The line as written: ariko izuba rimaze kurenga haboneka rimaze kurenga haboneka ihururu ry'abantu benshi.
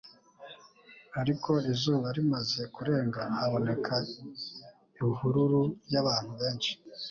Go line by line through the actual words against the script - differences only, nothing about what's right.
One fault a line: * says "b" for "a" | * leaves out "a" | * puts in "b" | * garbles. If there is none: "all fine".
* leaves out "rimaze kurenga haboneka"